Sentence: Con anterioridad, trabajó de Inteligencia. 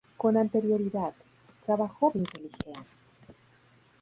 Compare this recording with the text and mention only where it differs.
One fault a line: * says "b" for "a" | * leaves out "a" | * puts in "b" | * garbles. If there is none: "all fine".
all fine